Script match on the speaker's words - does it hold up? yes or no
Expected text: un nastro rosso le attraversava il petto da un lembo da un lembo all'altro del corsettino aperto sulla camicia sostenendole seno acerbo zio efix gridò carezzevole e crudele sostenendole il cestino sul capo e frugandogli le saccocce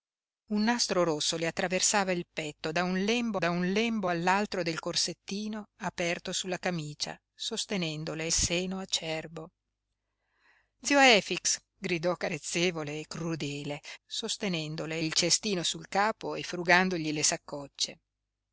yes